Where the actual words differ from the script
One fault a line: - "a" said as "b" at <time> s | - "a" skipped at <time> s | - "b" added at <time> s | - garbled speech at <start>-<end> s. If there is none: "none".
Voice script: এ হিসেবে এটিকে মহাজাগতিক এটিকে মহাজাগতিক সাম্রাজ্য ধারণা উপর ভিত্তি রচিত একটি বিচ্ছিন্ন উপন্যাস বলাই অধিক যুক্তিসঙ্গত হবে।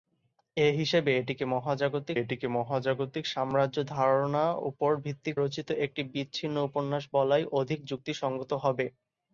none